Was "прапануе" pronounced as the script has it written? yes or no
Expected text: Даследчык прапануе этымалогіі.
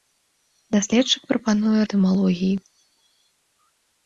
yes